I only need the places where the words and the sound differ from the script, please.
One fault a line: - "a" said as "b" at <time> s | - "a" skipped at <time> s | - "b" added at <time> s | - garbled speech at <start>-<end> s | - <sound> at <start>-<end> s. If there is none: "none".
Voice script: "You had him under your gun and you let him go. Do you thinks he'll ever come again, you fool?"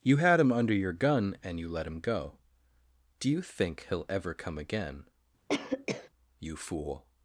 - "thinks" said as "think" at 3.4 s
- cough at 5.5-6.1 s